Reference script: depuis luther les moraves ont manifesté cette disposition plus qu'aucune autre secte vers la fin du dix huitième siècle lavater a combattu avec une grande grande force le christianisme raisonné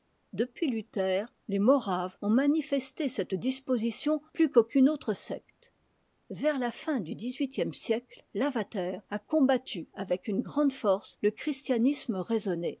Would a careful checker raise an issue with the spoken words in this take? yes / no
yes